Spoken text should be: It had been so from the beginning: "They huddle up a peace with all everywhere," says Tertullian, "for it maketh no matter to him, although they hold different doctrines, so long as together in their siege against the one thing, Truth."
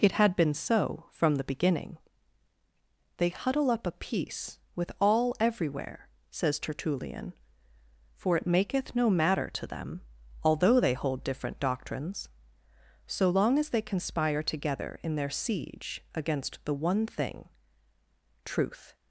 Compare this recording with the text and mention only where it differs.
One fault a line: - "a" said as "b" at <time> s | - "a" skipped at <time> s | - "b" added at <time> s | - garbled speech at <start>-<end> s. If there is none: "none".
- "him" said as "them" at 9.7 s
- "they conspire" added at 13.7 s